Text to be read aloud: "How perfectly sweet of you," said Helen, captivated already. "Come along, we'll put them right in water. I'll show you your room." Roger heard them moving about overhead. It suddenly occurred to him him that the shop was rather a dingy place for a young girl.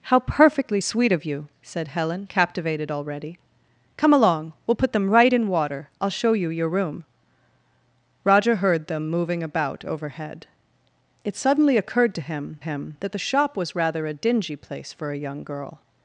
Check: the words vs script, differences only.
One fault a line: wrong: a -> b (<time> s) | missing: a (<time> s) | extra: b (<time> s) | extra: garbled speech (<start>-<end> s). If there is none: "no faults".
no faults